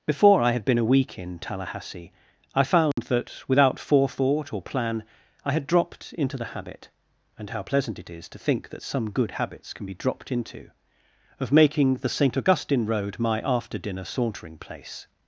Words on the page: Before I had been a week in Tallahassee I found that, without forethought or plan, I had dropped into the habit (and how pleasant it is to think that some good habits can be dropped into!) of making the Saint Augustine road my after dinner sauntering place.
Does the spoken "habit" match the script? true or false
true